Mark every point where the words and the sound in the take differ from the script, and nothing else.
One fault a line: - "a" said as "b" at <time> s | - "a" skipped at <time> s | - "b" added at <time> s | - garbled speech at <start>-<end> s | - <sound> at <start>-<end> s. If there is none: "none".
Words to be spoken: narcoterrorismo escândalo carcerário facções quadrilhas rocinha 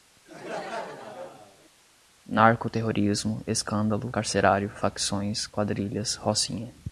- laugh at 0.3-1.7 s